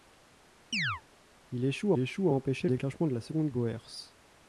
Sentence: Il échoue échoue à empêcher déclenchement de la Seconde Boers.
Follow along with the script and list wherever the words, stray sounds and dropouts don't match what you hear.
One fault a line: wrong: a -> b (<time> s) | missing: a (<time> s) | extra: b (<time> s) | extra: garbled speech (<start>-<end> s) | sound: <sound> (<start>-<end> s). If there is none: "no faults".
sound: chirp (0.7-1.0 s)